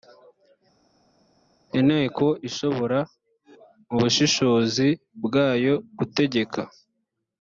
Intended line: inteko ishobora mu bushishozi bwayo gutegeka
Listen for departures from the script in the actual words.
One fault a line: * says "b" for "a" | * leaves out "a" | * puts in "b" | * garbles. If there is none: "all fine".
all fine